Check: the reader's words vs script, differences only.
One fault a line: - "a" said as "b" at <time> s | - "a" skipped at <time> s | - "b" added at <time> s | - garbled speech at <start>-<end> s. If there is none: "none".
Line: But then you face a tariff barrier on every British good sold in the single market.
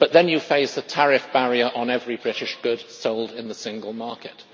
none